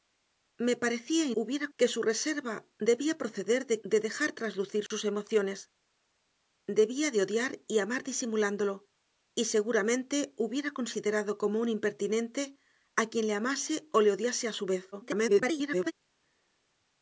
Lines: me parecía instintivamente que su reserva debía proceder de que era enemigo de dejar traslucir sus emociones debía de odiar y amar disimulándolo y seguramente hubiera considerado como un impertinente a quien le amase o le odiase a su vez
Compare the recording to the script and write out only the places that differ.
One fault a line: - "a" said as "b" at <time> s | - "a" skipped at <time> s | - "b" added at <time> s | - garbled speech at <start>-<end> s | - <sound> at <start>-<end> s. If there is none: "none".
- "instintivamente" said as "hubiera" at 1.3 s
- "que era enemigo" skipped at 3.8 s
- dropout at 4.9-4.9 s
- garbled speech at 14.9-15.9 s